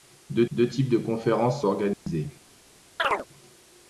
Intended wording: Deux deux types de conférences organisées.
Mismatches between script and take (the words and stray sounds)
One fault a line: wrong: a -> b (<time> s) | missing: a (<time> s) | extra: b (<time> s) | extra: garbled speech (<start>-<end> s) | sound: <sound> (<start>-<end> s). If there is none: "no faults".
sound: dropout (1.9-2.1 s)
sound: chirp (3.0-3.3 s)